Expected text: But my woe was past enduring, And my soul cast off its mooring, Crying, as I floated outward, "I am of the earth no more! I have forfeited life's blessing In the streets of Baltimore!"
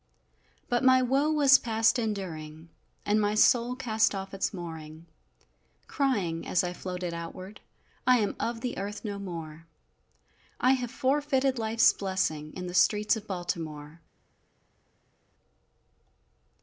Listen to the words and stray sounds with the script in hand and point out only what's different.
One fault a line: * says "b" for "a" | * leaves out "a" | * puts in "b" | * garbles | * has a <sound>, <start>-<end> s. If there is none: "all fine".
all fine